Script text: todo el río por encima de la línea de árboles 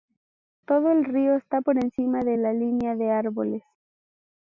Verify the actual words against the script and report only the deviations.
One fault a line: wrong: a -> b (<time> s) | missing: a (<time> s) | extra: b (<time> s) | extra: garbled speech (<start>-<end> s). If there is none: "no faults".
extra: está (1.4 s)